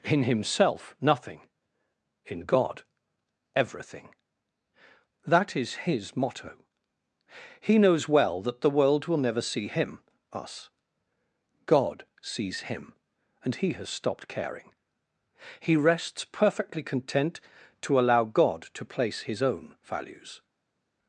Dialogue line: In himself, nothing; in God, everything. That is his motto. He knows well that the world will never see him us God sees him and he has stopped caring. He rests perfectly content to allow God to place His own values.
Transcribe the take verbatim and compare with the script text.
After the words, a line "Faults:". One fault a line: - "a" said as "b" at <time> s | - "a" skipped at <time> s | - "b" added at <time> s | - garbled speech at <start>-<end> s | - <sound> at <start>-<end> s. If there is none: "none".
In himself, nothing; in God, everything. That is his motto. He knows well that the world will never see him us God sees him and he has stopped caring. He rests perfectly content to allow God to place His own values.
Faults:
none